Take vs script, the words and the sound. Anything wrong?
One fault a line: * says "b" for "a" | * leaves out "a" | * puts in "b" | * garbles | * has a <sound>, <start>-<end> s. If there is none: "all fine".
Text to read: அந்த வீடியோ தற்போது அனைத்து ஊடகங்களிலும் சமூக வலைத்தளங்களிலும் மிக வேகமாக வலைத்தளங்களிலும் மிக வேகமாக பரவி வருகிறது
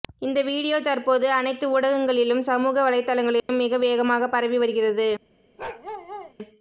* says "இந்த" for "அந்த"
* has a dropout, 3.4-3.5 s
* leaves out "வலைத்தளங்களிலும் மிக வேகமாக"
* has a bark, 5.6-6.3 s